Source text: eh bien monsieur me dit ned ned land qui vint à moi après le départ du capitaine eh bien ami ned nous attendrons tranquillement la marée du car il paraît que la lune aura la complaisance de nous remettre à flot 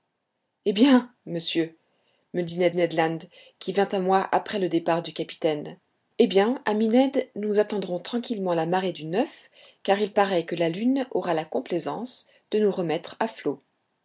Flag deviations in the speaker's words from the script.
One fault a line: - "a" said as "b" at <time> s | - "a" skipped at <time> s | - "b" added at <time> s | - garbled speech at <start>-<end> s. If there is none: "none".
none